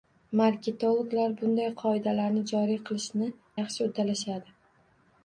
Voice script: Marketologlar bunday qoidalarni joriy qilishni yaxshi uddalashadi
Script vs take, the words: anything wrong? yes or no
no